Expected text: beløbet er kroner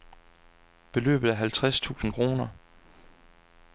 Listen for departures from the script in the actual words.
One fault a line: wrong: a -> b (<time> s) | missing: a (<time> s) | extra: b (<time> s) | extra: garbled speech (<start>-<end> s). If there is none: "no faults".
extra: halvtreds tusind (1.3 s)